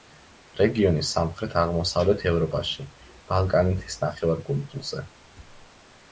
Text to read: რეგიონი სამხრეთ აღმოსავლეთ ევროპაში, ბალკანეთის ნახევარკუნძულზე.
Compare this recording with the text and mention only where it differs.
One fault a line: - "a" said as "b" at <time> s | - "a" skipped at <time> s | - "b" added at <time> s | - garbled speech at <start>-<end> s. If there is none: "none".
none